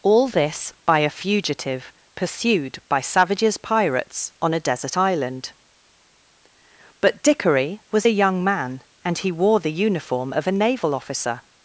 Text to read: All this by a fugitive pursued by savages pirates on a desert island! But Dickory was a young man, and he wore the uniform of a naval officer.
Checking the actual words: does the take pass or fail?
pass